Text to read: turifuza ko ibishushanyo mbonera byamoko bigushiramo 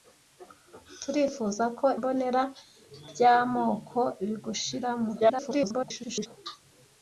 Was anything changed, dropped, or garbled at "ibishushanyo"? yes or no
yes